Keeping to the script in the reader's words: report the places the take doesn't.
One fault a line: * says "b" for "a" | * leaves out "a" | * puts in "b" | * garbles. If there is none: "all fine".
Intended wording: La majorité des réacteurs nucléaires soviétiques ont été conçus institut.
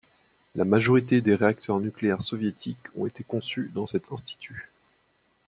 * puts in "dans cet"